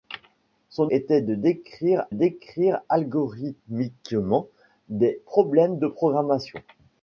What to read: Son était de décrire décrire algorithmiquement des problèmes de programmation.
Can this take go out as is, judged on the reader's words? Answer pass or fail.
pass